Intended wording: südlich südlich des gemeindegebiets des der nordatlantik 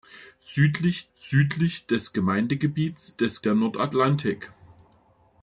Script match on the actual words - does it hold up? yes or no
yes